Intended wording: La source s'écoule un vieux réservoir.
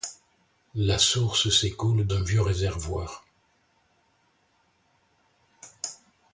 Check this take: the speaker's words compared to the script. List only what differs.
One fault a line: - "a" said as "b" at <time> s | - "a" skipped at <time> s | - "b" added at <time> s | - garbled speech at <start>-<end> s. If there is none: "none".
none